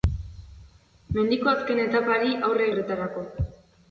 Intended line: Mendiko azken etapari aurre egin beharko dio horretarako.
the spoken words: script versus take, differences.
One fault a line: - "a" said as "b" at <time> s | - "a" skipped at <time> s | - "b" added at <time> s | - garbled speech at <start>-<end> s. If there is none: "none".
- "egin beharko dio" skipped at 2.7 s